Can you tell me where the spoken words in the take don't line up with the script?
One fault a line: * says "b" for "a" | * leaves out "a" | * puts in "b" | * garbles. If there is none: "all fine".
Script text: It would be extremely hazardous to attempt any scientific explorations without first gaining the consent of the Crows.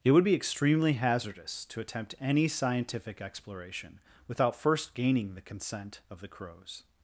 * says "exploration" for "explorations"